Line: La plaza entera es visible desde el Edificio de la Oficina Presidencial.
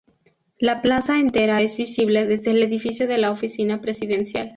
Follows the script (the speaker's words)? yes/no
yes